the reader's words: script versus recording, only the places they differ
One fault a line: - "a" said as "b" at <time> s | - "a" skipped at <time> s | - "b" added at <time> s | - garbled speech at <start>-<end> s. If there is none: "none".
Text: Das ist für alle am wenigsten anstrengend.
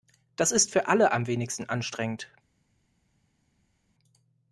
none